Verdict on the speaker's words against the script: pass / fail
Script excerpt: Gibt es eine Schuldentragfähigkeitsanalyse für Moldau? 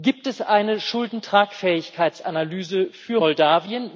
pass